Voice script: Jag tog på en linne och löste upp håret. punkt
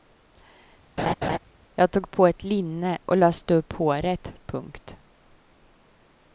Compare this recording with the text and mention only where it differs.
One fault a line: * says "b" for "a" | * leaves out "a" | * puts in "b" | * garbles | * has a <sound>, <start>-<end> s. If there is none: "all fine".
* has a laugh, 1.0-1.4 s
* says "ett" for "en"